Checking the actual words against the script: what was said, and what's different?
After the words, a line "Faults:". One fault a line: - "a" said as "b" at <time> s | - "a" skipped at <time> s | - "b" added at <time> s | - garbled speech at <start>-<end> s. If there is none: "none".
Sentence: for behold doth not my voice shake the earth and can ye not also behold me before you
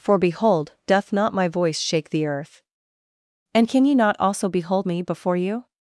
for behold doth not my voice shake the earth and can ye not also behold me before you
Faults:
none